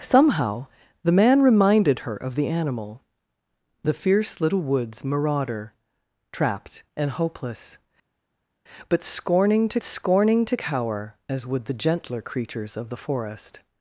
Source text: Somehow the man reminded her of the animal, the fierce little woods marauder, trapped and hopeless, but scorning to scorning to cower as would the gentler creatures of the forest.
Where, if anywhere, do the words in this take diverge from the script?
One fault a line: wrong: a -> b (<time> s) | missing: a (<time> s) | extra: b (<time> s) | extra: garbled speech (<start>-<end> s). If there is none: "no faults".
no faults